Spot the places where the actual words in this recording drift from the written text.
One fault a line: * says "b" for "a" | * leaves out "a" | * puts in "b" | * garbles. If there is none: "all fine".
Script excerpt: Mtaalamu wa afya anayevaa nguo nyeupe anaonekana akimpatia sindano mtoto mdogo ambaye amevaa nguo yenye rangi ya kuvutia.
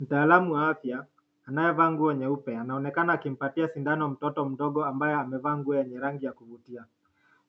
all fine